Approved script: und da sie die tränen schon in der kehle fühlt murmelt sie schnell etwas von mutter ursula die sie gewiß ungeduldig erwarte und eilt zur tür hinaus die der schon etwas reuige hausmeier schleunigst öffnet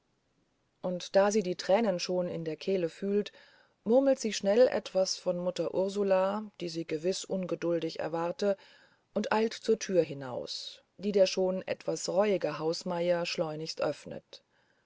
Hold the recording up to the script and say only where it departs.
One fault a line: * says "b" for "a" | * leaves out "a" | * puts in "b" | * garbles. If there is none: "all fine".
all fine